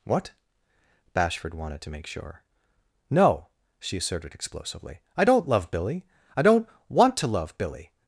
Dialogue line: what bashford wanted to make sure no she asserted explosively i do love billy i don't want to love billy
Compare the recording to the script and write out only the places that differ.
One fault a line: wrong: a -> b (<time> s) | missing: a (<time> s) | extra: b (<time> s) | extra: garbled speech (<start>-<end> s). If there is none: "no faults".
wrong: do -> don't (5.2 s)